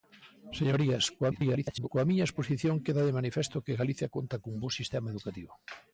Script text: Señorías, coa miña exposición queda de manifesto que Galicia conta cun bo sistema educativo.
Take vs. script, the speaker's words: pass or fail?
fail